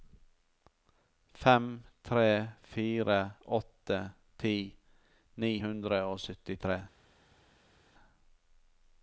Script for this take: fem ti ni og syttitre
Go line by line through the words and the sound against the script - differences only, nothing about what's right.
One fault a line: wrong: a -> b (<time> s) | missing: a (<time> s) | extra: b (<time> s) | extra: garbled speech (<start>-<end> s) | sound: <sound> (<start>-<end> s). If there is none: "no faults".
extra: tre fire åtte (2.0 s)
extra: hundre (5.7 s)